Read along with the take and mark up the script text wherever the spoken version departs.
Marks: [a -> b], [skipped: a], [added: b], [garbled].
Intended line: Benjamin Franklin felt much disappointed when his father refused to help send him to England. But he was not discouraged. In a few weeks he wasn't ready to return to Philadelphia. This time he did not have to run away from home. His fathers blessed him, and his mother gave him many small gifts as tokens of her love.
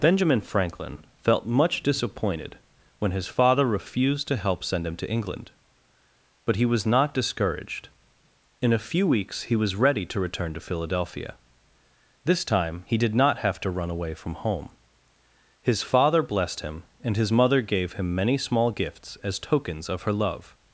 Benjamin Franklin felt much disappointed when his father refused to help send him to England. But he was not discouraged. In a few weeks he [wasn't -> was] ready to return to Philadelphia. This time he did not have to run away from home. His [fathers -> father] blessed him, and his mother gave him many small gifts as tokens of her love.